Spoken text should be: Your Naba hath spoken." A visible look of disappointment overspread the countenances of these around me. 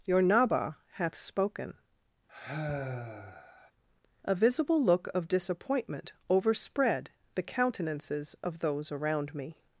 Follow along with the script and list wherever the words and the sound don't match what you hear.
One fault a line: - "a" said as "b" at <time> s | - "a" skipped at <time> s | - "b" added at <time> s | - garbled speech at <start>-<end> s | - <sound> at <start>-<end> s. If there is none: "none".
- sigh at 2.3-3.7 s
- "these" said as "those" at 8.6 s